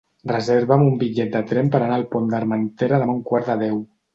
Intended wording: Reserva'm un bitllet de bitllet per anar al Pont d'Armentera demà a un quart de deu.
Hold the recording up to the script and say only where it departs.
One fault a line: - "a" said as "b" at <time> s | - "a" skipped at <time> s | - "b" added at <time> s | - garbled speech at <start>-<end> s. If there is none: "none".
- "bitllet" said as "tren" at 1.5 s